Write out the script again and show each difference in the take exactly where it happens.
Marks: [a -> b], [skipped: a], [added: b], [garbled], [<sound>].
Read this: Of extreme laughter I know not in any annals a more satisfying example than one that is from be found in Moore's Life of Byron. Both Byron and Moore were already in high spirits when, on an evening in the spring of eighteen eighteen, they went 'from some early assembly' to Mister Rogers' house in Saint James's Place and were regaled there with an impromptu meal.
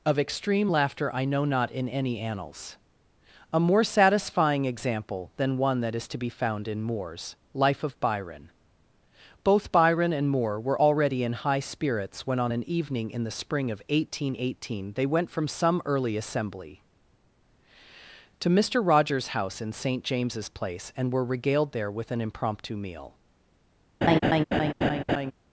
Of extreme laughter I know not in any annals a more satisfying example than one that is [from -> to] be found in Moore's Life of Byron. Both Byron and Moore were already in high spirits when, on an evening in the spring of eighteen eighteen, they went 'from some early assembly' to Mister Rogers' house in Saint James's Place and were regaled there with an impromptu meal. [laugh]